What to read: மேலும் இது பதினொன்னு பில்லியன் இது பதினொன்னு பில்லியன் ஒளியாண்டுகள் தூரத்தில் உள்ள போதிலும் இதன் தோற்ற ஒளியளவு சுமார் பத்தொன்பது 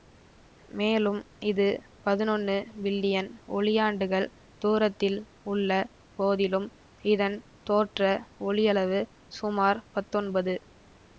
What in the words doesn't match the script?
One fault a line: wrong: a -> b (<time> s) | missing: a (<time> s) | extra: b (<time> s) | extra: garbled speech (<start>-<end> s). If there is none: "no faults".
missing: இது பதினொன்னு பில்லியன் (3.3 s)